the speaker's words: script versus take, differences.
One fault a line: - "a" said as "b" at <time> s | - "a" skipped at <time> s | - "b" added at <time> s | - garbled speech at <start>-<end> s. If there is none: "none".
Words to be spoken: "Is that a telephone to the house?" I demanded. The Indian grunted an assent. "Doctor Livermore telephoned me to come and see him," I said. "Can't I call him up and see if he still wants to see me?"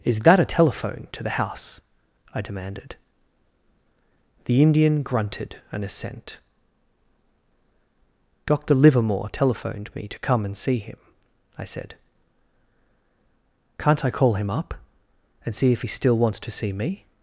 none